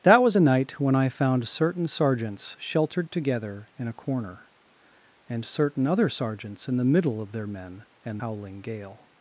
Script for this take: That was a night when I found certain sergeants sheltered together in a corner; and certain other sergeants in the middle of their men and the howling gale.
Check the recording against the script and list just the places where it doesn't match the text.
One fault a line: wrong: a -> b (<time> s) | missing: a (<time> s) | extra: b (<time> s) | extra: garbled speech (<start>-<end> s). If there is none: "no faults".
missing: the (8.2 s)